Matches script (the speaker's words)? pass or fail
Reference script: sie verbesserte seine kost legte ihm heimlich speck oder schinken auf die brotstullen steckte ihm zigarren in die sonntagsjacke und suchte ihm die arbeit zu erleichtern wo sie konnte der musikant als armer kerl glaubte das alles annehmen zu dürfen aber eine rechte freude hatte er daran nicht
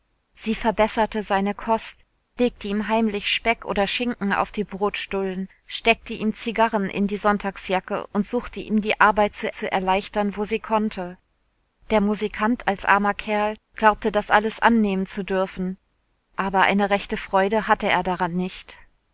fail